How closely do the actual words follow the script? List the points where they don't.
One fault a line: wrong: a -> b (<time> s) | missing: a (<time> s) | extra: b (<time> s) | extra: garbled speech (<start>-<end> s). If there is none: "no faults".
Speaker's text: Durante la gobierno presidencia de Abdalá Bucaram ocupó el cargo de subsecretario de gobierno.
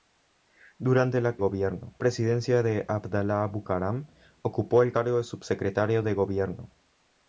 no faults